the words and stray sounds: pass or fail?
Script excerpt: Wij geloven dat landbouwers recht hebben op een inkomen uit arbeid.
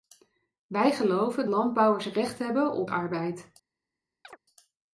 fail